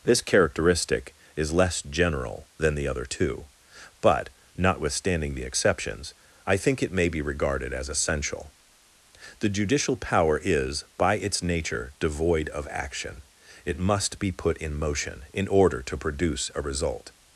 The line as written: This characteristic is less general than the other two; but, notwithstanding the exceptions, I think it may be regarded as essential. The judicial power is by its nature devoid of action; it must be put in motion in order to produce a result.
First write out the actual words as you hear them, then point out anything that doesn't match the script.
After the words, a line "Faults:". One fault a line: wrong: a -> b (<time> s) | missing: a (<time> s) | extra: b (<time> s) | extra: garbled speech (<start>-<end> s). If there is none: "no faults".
This characteristic is less general than the other two; but, notwithstanding the exceptions, I think it may be regarded as essential. The judicial power is by its nature devoid of action; it must be put in motion in order to produce a result.
Faults:
no faults